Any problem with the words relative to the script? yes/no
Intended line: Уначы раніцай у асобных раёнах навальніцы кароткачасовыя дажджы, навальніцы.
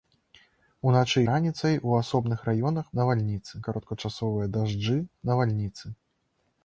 no